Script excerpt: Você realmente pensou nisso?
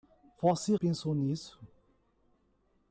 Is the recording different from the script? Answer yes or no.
yes